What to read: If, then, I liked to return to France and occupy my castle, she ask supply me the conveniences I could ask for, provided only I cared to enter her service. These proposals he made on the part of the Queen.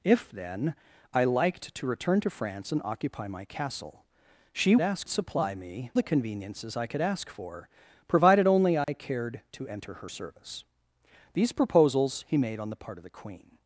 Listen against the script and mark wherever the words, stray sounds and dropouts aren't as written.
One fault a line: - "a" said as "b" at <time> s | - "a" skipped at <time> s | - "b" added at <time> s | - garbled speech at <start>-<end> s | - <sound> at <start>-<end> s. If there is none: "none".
- dropout at 8.8-8.9 s